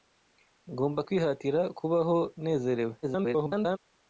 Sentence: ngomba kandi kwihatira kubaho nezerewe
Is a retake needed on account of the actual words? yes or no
yes